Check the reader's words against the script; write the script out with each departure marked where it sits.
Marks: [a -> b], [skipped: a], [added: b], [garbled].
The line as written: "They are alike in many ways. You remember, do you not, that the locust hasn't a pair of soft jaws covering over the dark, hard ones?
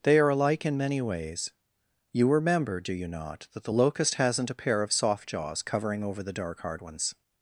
"They are alike in many ways. You remember, do you not, that the locust hasn't a pair of soft jaws covering over the dark, hard ones?